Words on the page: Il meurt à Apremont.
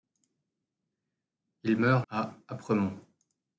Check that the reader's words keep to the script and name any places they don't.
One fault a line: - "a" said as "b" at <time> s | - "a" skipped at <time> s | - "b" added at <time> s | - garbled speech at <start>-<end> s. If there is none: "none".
none